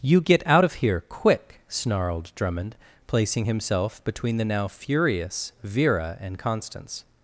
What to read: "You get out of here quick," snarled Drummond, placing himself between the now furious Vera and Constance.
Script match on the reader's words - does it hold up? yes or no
yes